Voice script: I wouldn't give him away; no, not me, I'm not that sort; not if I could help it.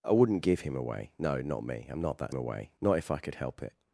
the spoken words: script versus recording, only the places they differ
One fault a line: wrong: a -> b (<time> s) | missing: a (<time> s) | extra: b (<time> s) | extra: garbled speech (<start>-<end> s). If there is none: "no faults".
wrong: sort -> away (2.3 s)